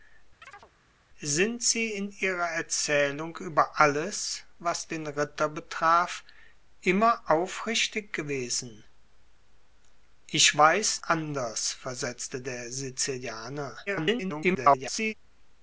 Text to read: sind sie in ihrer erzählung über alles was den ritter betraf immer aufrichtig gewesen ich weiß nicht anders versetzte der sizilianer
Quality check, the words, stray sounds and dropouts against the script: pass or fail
fail